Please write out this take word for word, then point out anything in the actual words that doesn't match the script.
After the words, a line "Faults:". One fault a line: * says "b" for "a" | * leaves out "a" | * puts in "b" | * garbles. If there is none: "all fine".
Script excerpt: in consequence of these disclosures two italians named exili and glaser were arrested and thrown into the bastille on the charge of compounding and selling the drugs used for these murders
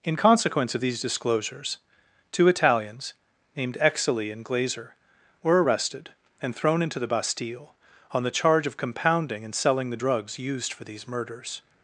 in consequence of these disclosures two italians named exili and glaser were arrested and thrown into the bastille on the charge of compounding and selling the drugs used for these murders
Faults:
all fine